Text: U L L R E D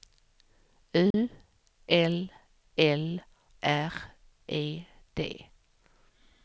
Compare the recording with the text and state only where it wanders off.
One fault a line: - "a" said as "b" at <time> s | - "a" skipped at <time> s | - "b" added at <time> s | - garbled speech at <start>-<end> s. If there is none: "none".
none